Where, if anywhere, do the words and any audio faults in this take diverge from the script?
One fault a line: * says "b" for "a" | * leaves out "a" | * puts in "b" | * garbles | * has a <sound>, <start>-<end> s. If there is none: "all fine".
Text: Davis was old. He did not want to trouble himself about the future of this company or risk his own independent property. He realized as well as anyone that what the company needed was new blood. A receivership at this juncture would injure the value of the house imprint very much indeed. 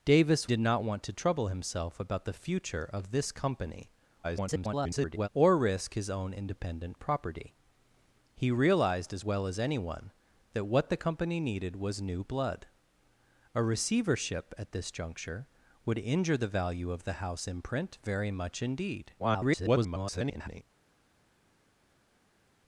* leaves out "was old He"
* garbles
* garbles